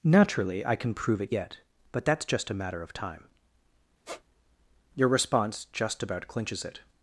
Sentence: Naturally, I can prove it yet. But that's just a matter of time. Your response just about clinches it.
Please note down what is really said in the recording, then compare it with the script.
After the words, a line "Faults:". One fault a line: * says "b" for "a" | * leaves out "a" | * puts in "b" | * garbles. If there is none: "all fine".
Naturally, I can prove it yet. But that's just a matter of time. Your response just about clinches it.
Faults:
all fine